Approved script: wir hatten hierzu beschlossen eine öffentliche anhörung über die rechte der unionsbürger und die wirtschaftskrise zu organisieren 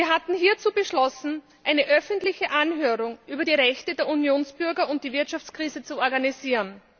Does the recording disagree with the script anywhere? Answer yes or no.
no